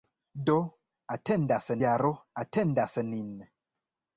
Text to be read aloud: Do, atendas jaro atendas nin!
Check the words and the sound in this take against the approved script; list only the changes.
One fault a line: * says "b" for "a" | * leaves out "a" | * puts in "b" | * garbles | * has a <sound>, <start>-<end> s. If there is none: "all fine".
all fine